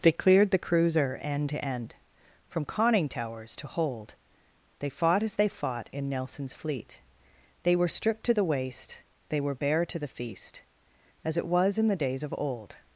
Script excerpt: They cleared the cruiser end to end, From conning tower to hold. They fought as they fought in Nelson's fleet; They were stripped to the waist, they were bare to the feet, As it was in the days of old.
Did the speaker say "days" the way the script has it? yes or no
yes